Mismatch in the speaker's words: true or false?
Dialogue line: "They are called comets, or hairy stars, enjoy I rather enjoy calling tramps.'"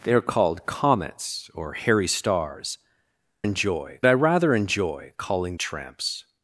false